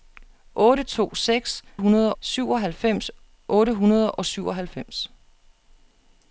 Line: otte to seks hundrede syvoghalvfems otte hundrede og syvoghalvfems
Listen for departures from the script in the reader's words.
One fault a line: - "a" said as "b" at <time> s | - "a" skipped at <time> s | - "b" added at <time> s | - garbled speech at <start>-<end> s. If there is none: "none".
none